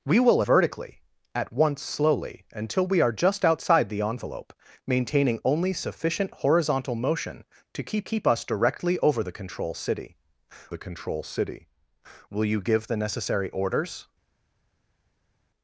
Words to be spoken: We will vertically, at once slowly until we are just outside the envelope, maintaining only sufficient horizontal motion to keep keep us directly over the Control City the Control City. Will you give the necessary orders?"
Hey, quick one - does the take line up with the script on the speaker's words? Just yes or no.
yes